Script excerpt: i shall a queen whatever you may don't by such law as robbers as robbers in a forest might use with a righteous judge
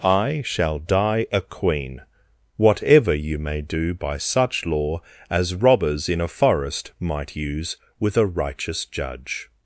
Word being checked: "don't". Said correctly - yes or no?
no